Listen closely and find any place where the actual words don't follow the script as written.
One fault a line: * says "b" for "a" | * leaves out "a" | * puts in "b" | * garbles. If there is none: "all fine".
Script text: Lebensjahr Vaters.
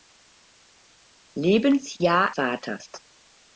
all fine